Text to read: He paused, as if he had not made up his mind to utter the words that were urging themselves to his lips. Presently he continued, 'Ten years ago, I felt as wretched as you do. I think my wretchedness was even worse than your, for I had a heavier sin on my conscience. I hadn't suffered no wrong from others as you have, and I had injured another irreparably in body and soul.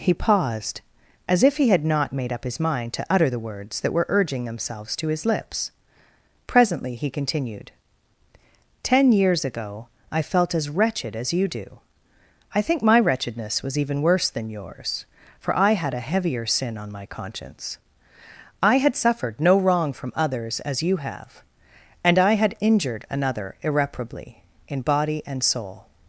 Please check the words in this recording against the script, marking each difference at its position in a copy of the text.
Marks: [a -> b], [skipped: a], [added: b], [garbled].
He paused, as if he had not made up his mind to utter the words that were urging themselves to his lips. Presently he continued, 'Ten years ago, I felt as wretched as you do. I think my wretchedness was even worse than [your, -> yours] for I had a heavier sin on my conscience. I [hadn't -> had] suffered no wrong from others as you have, and I had injured another irreparably in body and soul.